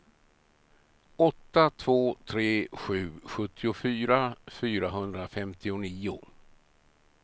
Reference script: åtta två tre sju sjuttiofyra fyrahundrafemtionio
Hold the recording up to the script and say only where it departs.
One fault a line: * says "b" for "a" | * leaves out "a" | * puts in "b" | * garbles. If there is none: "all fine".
all fine